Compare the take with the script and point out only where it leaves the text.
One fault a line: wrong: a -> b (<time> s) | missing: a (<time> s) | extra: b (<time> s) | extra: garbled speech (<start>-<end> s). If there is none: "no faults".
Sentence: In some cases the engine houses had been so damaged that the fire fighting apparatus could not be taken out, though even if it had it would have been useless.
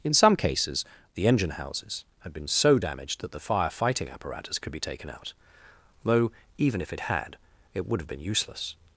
missing: not (4.7 s)